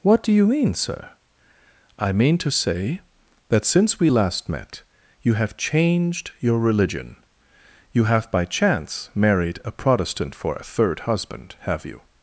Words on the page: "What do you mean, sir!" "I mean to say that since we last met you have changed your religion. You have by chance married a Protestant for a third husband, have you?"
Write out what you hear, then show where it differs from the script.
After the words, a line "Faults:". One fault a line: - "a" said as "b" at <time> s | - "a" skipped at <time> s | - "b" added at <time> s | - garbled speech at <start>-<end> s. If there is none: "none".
"What do you mean, sir!" "I mean to say that since we last met you have changed your religion. You have by chance married a Protestant for a third husband, have you?"
Faults:
none